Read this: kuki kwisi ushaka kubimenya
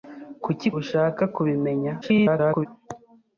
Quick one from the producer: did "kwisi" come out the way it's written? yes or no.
no